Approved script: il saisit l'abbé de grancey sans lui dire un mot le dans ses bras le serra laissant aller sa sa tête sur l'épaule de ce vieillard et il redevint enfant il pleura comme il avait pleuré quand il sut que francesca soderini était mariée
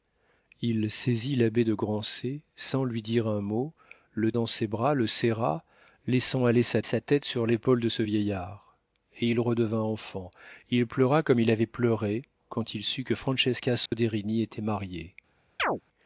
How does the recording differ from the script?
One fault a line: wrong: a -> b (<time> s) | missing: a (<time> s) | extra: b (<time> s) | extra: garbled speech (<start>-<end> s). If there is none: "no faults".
no faults